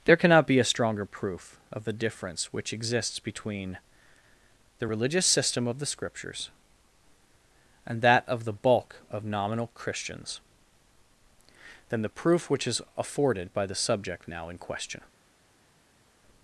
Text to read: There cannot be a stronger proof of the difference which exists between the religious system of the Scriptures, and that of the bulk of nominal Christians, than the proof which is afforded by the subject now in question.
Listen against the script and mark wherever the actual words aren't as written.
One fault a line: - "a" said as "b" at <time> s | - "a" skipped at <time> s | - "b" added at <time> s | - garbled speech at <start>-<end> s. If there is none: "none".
none